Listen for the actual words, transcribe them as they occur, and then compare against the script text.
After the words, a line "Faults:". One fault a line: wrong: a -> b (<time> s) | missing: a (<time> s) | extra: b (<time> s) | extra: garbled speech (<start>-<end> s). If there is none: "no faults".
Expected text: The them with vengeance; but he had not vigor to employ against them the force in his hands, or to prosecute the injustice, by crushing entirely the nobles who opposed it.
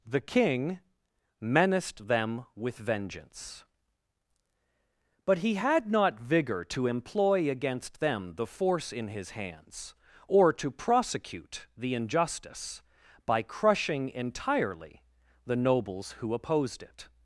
The king menaced them with vengeance; but he had not vigor to employ against them the force in his hands, or to prosecute the injustice, by crushing entirely the nobles who opposed it.
Faults:
extra: king menaced (0.2 s)